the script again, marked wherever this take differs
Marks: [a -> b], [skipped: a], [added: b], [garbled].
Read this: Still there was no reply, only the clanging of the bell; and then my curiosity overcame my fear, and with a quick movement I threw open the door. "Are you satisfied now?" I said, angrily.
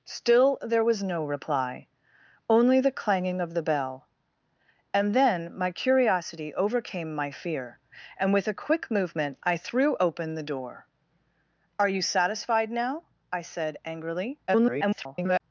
Still there was no reply, only the clanging of the bell; and then my curiosity overcame my fear, and with a quick movement I threw open the door. "Are you satisfied now?" I said, angrily. [garbled]